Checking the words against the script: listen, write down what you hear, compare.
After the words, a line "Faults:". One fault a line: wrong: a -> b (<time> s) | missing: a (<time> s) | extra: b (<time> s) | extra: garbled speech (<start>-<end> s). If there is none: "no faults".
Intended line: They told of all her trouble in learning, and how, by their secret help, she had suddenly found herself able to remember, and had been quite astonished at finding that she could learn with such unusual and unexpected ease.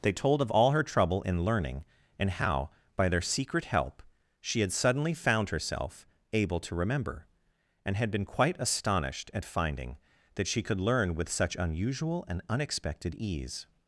They told of all her trouble in learning, and how, by their secret help, she had suddenly found herself able to remember, and had been quite astonished at finding that she could learn with such unusual and unexpected ease.
Faults:
no faults